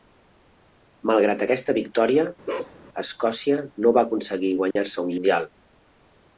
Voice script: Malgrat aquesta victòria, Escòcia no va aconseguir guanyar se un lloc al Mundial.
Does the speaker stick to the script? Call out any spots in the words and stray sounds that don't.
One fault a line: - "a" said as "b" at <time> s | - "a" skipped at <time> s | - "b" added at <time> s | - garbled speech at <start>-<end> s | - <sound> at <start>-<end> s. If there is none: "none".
- bark at 2.5-2.8 s
- dropout at 4.7-4.8 s
- "lloc al" skipped at 5.2 s